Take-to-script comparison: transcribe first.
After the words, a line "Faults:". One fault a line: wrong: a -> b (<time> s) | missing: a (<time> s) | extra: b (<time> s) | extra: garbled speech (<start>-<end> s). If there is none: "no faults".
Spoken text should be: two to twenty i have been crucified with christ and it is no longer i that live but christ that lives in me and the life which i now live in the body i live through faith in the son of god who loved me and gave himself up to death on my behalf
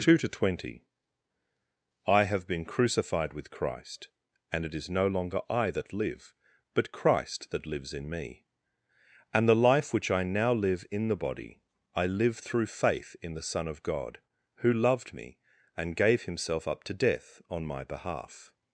two to twenty i have been crucified with christ and it is no longer i that live but christ that lives in me and the life which i now live in the body i live through faith in the son of god who loved me and gave himself up to death on my behalf
Faults:
no faults